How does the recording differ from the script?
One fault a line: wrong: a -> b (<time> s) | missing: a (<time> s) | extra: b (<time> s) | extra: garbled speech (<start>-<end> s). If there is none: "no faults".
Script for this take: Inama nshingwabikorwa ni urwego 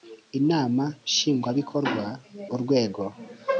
missing: ni (2.0 s)